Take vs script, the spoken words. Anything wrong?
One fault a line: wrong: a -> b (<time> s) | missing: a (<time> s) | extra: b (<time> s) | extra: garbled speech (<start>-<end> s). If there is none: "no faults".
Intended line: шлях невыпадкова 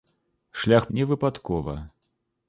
no faults